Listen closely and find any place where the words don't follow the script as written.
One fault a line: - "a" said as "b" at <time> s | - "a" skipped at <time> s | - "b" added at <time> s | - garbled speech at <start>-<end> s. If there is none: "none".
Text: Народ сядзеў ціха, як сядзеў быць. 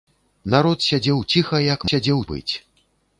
none